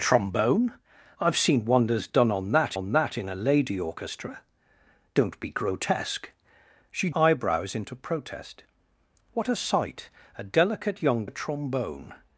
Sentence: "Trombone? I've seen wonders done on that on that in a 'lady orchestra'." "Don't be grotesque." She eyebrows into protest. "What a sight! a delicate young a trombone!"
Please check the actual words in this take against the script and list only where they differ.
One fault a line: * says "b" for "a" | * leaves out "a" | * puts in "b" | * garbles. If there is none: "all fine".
all fine